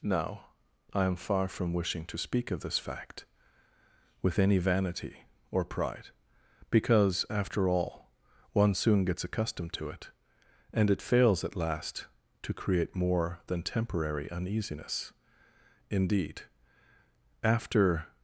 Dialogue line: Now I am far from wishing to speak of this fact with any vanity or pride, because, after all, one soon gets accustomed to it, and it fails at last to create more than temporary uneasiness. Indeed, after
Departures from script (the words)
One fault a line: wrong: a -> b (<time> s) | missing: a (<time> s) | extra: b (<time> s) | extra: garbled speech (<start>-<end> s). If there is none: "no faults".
no faults